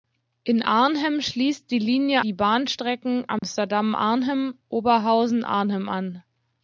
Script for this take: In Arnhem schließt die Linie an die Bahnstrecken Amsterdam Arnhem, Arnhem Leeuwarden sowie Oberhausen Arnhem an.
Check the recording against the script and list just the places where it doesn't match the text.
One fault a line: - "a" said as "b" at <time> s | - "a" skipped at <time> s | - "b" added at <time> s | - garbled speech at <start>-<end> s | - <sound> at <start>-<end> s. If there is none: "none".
- "an" skipped at 2.2 s
- dropout at 3.4-3.4 s
- "Arnhem Leeuwarden sowie" skipped at 4.5 s